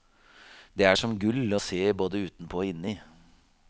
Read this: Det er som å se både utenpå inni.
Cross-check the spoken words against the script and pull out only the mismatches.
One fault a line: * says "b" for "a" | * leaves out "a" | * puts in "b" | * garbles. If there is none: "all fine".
* puts in "gull"
* puts in "og"